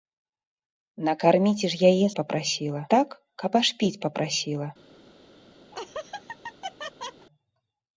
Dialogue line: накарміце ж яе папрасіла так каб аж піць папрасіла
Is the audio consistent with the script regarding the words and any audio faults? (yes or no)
no